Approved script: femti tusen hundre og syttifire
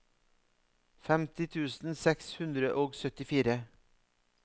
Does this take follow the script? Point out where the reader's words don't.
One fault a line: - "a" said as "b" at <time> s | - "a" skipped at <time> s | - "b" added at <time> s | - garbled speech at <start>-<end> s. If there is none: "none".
- "seks" added at 2.0 s